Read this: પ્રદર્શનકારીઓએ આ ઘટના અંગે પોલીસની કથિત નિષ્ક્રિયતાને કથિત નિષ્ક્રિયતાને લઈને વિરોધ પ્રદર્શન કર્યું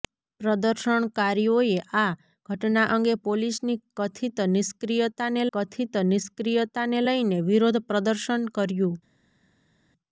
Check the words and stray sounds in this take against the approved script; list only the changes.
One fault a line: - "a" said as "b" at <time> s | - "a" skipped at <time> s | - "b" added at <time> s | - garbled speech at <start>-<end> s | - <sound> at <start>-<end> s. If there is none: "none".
none